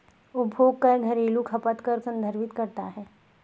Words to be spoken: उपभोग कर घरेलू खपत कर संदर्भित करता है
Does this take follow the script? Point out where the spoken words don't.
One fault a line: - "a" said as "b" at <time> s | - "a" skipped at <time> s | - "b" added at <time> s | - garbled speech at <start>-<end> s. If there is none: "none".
none